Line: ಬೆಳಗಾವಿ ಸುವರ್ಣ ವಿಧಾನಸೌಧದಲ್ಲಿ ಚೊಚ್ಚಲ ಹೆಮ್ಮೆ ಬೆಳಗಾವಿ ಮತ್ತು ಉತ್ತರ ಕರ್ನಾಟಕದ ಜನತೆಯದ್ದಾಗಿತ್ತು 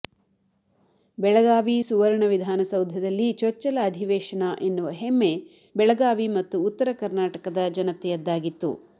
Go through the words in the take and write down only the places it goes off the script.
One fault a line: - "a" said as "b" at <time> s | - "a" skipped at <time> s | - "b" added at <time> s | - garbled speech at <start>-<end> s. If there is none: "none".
- "ಅಧಿವೇಶನ ಎನ್ನುವ" added at 3.8 s